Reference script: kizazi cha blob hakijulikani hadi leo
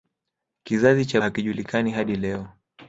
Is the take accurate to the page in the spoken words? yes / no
no